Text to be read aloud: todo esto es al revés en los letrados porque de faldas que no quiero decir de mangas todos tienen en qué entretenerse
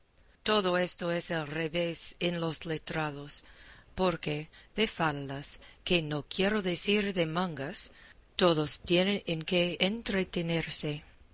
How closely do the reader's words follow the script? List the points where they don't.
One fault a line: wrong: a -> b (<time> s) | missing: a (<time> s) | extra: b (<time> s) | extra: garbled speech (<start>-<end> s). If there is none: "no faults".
no faults